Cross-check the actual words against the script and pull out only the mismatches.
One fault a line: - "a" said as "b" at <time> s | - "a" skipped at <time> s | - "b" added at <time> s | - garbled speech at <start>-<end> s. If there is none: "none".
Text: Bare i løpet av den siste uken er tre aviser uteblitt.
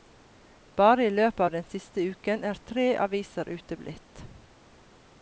none